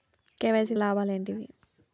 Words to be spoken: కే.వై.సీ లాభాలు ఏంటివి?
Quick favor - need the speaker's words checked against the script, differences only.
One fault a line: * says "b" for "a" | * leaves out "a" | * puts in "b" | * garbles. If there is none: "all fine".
all fine